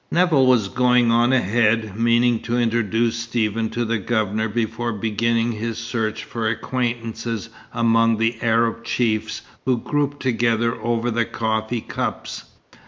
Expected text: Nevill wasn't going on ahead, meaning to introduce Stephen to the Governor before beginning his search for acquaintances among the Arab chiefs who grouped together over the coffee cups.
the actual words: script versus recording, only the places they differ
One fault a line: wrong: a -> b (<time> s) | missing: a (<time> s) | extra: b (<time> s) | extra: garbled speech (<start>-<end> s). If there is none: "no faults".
wrong: wasn't -> was (0.5 s)